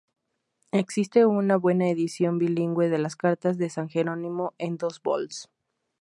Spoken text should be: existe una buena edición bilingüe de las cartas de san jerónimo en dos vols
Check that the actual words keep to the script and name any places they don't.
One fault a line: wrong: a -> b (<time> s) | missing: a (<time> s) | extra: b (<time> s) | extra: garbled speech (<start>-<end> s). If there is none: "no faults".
no faults